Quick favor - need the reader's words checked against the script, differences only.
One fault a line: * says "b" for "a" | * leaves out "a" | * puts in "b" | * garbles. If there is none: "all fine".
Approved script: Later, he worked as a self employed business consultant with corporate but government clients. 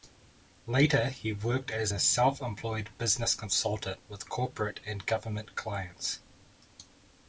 * says "and" for "but"